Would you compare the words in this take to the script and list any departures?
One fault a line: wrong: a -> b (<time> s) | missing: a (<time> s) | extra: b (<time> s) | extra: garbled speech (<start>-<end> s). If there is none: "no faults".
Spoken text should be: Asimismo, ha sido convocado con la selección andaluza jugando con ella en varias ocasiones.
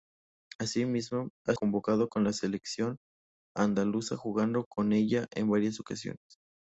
missing: sido (1.6 s)